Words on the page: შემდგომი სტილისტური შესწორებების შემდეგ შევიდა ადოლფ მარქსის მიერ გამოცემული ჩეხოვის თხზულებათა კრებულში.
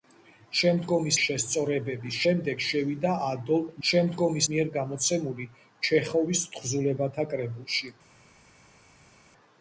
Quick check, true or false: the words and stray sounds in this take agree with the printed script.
false